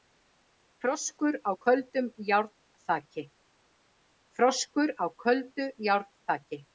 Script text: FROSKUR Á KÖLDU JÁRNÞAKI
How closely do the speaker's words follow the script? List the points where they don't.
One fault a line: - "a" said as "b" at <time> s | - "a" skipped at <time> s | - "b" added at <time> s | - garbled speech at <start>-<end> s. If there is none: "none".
none